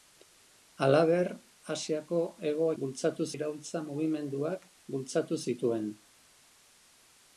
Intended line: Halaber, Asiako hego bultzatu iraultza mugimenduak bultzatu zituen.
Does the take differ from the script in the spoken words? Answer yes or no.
no